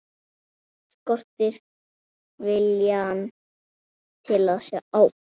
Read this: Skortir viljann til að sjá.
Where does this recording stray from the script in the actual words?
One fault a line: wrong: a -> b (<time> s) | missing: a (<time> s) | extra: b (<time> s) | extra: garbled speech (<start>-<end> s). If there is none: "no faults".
no faults